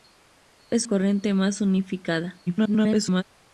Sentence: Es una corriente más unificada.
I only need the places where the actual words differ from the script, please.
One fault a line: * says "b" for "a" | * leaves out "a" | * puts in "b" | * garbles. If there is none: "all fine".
* leaves out "una"
* garbles